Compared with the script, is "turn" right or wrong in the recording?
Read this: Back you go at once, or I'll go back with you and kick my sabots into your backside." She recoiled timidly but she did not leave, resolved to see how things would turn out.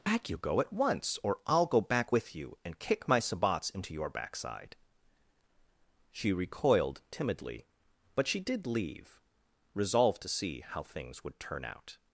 right